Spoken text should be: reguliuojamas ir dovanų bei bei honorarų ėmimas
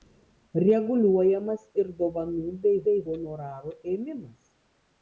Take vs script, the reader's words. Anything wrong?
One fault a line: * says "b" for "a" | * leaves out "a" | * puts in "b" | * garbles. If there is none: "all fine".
all fine